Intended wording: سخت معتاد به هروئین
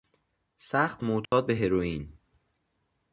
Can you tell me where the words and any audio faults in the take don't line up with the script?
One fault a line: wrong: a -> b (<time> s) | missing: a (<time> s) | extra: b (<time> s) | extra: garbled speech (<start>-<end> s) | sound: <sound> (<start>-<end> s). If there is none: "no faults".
sound: dropout (1.3-1.3 s)